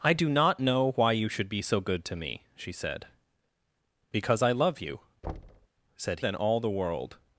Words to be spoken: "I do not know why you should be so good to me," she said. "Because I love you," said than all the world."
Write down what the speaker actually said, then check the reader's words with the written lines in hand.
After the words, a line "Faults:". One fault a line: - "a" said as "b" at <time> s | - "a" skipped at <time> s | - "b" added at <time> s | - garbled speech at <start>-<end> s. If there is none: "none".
"I do not know why you should be so good to me," she said. "Because I love you," said than all the world."
Faults:
none